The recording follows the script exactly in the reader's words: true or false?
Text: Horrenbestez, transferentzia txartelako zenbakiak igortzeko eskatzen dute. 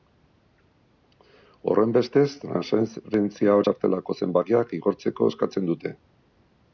true